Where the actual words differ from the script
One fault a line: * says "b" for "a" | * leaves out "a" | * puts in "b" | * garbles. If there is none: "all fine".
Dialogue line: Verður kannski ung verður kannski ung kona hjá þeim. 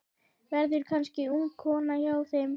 * leaves out "verður kannski ung"